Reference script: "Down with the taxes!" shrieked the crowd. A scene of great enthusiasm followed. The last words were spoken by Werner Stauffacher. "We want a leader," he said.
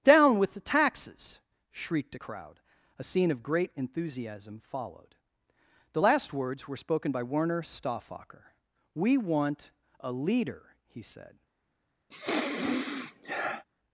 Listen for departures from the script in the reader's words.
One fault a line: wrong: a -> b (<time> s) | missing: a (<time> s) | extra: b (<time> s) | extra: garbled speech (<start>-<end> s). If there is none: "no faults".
wrong: the -> a (2.1 s)